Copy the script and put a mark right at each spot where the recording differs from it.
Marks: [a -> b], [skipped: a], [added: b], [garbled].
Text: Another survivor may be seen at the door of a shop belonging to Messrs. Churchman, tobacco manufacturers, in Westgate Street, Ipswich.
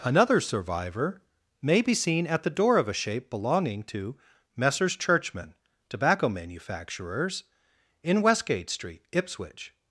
Another survivor may be seen at the door of a [shop -> shape] belonging to Messrs. Churchman, tobacco manufacturers, in Westgate Street, Ipswich.